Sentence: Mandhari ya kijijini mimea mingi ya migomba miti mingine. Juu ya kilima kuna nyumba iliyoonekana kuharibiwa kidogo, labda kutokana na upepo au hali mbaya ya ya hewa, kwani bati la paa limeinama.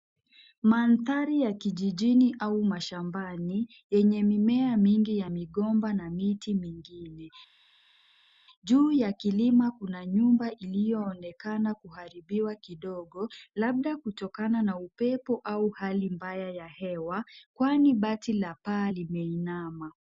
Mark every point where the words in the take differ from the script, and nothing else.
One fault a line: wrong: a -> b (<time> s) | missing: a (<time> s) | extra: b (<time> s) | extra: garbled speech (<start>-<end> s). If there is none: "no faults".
extra: au mashambani yenye (2.4 s)
extra: na (5.9 s)
missing: ya (16.7 s)